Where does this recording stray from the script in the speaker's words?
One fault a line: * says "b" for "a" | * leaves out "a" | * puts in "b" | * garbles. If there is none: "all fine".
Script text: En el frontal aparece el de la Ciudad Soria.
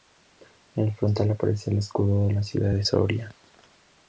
* puts in "escudo"
* puts in "de"